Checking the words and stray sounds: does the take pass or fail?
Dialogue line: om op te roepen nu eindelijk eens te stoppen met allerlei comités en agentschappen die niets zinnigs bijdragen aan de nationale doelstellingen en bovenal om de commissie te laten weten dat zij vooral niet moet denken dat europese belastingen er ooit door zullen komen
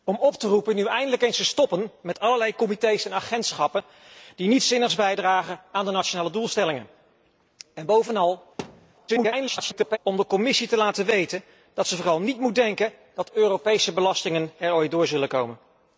fail